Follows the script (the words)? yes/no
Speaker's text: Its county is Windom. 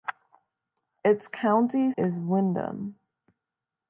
yes